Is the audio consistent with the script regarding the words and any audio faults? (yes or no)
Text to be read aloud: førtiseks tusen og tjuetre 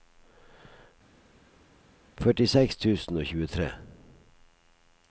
yes